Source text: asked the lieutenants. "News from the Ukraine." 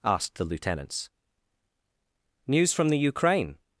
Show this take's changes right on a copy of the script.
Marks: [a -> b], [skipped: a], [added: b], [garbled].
asked the lieutenants. "News from the Ukraine."